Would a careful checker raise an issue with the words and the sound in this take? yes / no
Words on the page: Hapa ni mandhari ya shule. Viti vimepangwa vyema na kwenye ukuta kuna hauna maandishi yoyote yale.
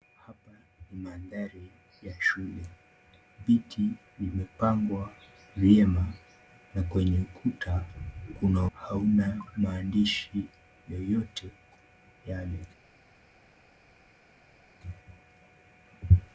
no